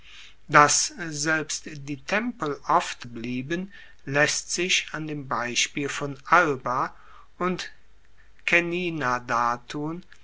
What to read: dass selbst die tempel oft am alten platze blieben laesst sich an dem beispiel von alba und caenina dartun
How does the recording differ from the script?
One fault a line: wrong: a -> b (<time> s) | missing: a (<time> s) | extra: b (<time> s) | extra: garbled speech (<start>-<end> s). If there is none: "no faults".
missing: am alten platze (3.0 s)